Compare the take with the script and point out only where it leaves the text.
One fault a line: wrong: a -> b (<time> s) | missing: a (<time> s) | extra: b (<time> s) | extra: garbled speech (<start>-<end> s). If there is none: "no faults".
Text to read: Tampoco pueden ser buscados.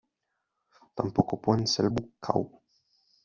no faults